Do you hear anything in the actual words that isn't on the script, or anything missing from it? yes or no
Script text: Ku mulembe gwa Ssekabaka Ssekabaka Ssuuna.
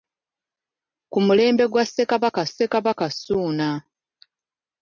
no